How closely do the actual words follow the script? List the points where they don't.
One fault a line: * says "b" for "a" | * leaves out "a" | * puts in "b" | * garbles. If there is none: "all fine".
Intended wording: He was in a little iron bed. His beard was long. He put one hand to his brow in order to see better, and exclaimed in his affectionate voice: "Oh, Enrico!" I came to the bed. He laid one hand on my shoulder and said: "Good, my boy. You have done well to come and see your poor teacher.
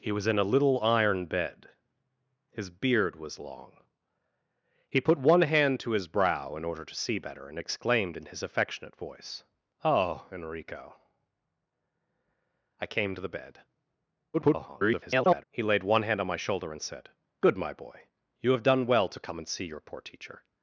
* garbles